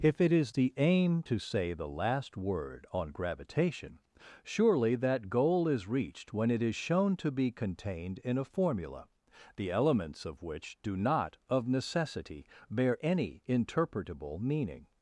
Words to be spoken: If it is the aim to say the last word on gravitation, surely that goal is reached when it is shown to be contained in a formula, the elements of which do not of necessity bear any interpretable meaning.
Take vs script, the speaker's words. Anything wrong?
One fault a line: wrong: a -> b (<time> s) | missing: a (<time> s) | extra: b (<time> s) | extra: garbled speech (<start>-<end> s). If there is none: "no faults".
no faults